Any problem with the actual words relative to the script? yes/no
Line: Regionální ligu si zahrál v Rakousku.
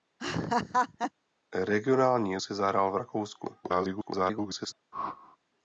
yes